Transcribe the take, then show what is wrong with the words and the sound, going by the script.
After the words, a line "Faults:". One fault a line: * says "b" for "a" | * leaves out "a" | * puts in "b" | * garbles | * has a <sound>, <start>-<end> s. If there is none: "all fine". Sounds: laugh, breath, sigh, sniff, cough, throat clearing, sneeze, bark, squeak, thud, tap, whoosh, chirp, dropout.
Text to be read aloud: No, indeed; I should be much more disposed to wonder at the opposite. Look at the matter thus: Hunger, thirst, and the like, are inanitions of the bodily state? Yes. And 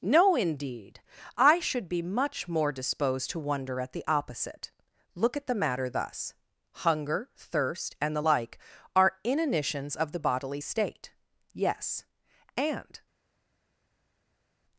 No, indeed; I should be much more disposed to wonder at the opposite. Look at the matter thus: Hunger, thirst, and the like, are inanitions of the bodily state? Yes. And
Faults:
all fine